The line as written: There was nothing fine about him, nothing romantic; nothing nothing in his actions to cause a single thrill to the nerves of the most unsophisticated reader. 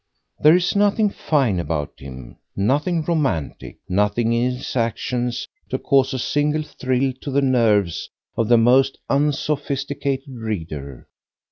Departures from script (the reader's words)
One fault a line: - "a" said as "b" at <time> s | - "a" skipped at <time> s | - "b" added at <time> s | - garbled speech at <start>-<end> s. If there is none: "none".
- "was" said as "is" at 0.6 s
- "nothing" skipped at 4.3 s